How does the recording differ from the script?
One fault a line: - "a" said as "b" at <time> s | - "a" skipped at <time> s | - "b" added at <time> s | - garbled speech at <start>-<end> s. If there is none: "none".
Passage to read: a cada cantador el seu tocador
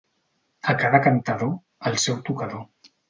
none